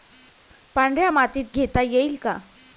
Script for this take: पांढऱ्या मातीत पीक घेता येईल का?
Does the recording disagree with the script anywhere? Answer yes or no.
yes